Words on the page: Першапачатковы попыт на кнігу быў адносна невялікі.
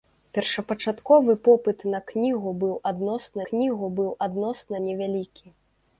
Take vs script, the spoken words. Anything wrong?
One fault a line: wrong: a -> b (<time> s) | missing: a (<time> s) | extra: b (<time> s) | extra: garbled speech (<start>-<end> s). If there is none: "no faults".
extra: кнігу быў адносна (3.5 s)